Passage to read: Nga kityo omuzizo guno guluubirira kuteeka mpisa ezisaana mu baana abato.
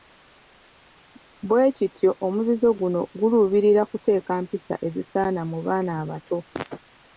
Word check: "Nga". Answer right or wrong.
wrong